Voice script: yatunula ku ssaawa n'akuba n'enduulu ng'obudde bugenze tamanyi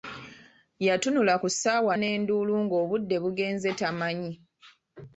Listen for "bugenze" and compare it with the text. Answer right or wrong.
right